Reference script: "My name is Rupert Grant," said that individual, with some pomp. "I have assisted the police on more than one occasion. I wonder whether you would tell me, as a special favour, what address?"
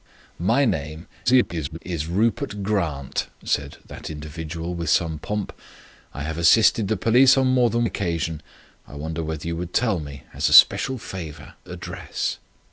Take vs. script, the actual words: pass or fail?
fail